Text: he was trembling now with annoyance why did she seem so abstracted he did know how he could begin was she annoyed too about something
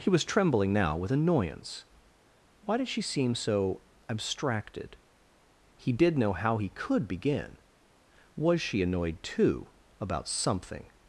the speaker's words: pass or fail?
pass